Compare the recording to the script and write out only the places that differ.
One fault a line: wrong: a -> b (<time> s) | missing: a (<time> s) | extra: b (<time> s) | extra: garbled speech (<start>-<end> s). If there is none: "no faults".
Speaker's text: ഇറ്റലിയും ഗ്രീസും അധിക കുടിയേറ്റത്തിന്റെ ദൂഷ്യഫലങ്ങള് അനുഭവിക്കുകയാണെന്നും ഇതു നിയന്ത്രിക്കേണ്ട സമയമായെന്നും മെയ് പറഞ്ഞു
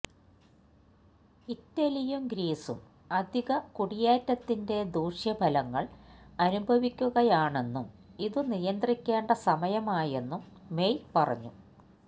no faults